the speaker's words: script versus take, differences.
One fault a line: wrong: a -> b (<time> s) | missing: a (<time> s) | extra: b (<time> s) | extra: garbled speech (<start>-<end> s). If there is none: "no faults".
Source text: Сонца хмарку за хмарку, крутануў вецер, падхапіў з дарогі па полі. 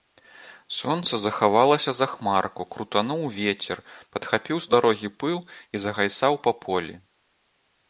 wrong: хмарку -> захавалася (1.2 s)
extra: пыл і загайсаў (5.3 s)